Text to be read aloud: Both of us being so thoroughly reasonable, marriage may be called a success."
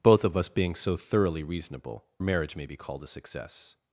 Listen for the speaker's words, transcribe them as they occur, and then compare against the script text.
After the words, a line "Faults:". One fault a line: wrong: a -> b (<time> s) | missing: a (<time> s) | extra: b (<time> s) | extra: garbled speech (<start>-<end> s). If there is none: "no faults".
Both of us being so thoroughly reasonable, marriage may be called a success."
Faults:
no faults